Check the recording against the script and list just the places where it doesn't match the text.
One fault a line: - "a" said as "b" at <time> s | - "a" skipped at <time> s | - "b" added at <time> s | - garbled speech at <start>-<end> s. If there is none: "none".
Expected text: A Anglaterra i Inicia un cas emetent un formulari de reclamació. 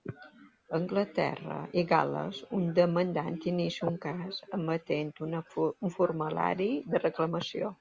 - "Gal·les un demandant" added at 1.9 s